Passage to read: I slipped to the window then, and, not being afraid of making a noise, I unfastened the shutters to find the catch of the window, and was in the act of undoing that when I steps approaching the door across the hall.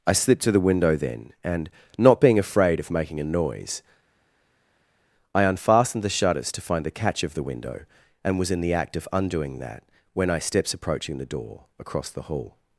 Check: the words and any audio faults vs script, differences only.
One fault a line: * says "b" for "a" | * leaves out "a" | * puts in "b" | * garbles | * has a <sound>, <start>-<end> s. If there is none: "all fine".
all fine